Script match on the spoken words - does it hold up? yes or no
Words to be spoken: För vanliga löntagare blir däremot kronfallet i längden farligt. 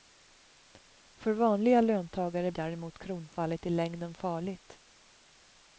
no